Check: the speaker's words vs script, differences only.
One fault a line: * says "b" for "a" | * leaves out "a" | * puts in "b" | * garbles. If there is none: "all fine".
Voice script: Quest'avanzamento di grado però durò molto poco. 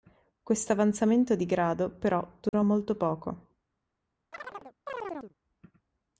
all fine